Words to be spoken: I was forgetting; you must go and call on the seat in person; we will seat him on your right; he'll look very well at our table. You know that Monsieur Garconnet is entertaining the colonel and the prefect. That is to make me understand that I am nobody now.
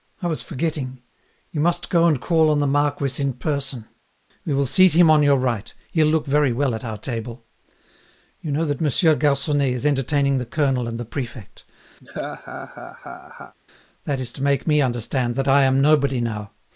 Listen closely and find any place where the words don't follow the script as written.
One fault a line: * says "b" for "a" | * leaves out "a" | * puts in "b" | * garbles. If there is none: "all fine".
* says "marquis" for "seat"